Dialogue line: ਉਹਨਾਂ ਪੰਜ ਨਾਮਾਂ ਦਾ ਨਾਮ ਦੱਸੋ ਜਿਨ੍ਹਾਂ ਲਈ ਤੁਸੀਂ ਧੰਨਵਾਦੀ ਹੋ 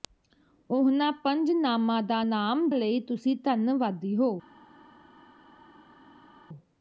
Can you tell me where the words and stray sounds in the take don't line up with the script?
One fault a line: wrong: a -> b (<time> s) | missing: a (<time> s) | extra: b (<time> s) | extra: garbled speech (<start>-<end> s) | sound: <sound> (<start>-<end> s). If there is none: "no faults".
missing: ਦੱਸੋ ਜਿਨ੍ਹਾਂ (2.7 s)